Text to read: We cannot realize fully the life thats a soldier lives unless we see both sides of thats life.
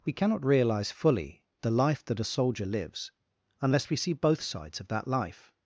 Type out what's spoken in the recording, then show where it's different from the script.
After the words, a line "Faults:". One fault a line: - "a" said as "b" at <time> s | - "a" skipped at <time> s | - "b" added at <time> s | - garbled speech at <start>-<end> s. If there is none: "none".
We cannot realize fully the life that a soldier lives unless we see both sides of that life.
Faults:
- "thats" said as "that" at 2.0 s
- "thats" said as "that" at 4.9 s